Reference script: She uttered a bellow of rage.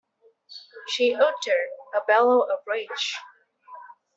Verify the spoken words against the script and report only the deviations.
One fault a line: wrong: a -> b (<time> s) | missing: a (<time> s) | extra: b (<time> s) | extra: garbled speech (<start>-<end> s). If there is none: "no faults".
no faults